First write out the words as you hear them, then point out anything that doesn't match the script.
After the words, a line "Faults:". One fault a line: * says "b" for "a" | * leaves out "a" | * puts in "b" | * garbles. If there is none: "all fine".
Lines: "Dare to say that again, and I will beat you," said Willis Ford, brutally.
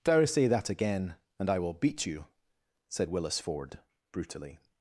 "Dare say that again, and I will beat you," said Willis Ford, brutally.
Faults:
* leaves out "to"